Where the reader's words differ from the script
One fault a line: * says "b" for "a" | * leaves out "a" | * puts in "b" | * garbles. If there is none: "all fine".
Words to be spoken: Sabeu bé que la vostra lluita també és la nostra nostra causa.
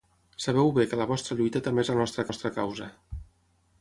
all fine